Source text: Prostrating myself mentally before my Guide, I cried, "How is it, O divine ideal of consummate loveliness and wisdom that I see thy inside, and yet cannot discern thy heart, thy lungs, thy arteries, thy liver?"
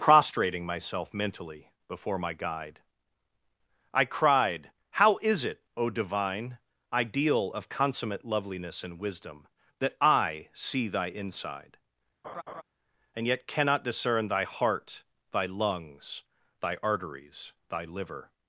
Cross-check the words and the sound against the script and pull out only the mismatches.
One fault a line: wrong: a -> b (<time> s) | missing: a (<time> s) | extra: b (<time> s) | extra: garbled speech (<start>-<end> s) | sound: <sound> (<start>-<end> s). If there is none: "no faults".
sound: laugh (12.2-12.6 s)